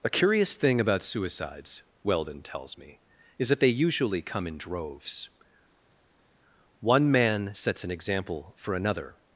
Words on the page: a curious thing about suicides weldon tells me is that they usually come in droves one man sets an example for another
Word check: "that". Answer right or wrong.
right